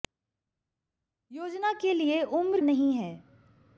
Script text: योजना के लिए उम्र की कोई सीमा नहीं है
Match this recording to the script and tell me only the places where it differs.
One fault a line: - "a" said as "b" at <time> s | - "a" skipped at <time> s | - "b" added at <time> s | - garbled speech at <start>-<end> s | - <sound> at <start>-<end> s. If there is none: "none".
- "की कोई सीमा" skipped at 2.6 s